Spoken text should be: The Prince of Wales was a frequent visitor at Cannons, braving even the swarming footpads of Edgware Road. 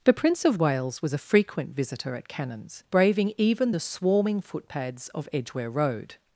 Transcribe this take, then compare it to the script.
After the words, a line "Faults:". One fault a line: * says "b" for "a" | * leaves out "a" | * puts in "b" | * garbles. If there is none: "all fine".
The Prince of Wales was a frequent visitor at Cannons, braving even the swarming footpads of Edgware Road.
Faults:
all fine